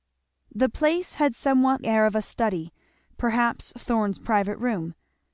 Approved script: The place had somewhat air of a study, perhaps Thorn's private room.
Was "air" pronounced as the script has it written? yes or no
yes